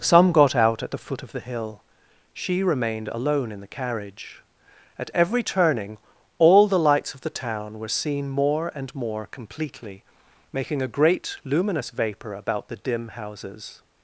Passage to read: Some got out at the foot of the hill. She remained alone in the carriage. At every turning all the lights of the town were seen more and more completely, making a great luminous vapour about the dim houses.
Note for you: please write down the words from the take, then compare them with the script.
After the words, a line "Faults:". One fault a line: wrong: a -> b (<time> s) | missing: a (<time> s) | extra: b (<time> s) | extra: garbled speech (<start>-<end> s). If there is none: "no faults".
Some got out at the foot of the hill. She remained alone in the carriage. At every turning all the lights of the town were seen more and more completely, making a great luminous vapour about the dim houses.
Faults:
no faults